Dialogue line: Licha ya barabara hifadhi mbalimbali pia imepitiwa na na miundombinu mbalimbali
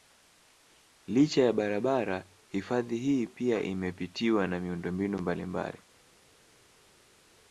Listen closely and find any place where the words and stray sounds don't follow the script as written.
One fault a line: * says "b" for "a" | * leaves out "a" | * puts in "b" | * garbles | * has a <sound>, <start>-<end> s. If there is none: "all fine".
* says "hii" for "mbalimbali"
* leaves out "na"